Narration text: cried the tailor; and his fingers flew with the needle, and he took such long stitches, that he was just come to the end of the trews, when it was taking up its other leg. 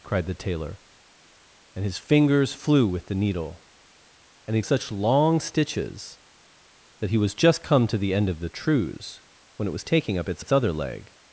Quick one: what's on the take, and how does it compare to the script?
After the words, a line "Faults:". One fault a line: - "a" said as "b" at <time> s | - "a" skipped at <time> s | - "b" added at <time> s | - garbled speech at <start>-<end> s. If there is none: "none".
cried the tailor; and his fingers flew with the needle, and he such long stitches, that he was just come to the end of the trews, when it was taking up its its other leg.
Faults:
- "took" skipped at 4.6 s
- "its" added at 10.4 s